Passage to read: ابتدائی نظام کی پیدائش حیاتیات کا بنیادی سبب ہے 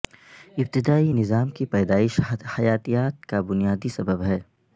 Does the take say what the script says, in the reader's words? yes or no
yes